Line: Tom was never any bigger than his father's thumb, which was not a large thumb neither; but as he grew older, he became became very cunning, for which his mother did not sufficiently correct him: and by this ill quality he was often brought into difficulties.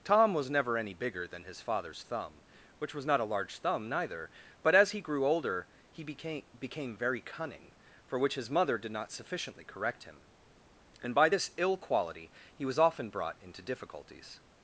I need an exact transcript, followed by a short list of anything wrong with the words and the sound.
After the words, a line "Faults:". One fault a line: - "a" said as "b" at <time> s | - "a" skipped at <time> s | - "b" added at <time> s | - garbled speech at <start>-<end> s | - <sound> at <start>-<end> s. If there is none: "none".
Tom was never any bigger than his father's thumb, which was not a large thumb neither; but as he grew older, he became became very cunning, for which his mother did not sufficiently correct him: and by this ill quality he was often brought into difficulties.
Faults:
none